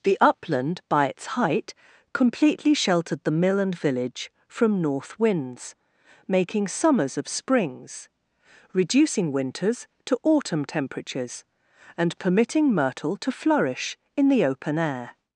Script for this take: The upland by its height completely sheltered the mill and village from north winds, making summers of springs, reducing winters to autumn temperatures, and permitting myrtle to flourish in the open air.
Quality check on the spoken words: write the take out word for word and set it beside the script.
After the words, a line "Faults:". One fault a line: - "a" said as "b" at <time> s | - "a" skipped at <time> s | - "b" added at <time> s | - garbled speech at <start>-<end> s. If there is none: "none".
The upland by its height completely sheltered the mill and village from north winds, making summers of springs, reducing winters to autumn temperatures, and permitting myrtle to flourish in the open air.
Faults:
none